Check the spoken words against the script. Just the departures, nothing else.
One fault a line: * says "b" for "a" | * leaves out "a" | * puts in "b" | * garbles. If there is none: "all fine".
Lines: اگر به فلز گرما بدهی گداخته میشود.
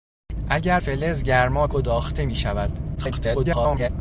* leaves out "به"
* leaves out "بدهی"
* garbles